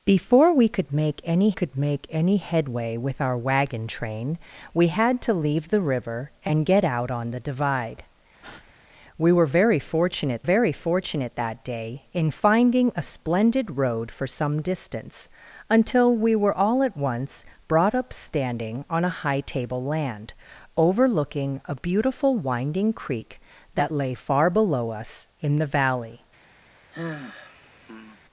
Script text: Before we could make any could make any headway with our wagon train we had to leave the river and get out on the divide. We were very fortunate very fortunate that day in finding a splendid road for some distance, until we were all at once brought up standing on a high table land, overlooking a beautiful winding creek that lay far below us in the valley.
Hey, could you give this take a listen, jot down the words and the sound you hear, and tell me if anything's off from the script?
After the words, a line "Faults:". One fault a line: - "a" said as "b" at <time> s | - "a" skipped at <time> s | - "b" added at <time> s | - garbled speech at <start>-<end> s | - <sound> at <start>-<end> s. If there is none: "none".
Before we could make any could make any headway with our wagon train we had to leave the river and get out on the divide. We were very fortunate very fortunate that day in finding a splendid road for some distance, until we were all at once brought up standing on a high table land, overlooking a beautiful winding creek that lay far below us in the valley.
Faults:
- breath at 8.4-8.7 s
- sigh at 26.9-28.2 s